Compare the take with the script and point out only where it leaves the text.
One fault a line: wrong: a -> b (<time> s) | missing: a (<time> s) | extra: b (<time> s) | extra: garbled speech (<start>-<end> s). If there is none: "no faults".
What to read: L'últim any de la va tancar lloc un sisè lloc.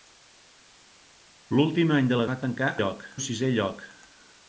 no faults